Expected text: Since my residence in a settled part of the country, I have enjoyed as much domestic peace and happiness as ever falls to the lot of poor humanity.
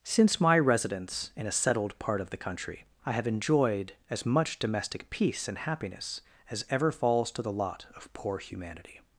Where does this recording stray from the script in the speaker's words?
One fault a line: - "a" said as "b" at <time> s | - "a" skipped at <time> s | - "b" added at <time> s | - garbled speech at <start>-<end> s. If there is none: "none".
none